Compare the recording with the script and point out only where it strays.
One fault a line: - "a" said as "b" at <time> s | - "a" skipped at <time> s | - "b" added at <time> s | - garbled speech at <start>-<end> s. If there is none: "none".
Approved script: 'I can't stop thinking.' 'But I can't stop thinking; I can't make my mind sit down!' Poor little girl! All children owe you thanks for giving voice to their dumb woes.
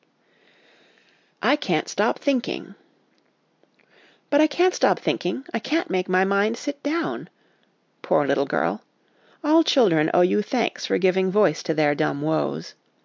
none